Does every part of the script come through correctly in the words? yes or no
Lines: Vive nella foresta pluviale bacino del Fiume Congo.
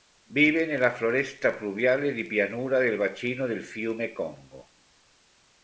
no